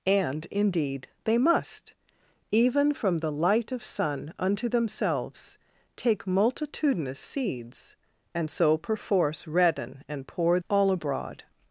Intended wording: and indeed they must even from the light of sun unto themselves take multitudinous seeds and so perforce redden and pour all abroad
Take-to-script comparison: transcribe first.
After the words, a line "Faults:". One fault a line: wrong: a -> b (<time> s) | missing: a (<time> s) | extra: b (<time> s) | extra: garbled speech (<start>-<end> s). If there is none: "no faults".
and indeed they must even from the light of sun unto themselves take multitudinous seeds and so perforce redden and pour all abroad
Faults:
no faults